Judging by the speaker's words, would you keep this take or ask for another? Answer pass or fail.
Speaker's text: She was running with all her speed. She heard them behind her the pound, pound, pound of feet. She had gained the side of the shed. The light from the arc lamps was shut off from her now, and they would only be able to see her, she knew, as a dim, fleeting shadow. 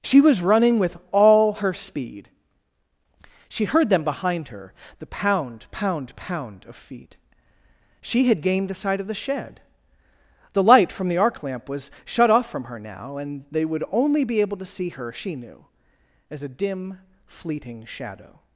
fail